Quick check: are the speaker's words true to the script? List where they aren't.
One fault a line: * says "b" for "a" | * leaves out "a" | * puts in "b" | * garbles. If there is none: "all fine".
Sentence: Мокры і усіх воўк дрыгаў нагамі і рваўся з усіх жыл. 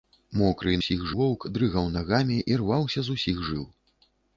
all fine